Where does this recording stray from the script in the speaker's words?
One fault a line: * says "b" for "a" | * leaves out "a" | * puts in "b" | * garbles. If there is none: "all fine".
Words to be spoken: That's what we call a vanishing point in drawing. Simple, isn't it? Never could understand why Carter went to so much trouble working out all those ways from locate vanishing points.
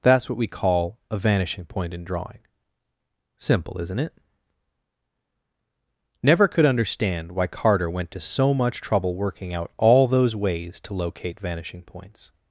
* says "to" for "from"